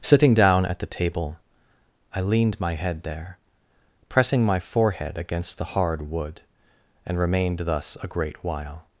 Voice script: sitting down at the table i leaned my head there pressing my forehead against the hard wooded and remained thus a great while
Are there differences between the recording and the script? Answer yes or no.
yes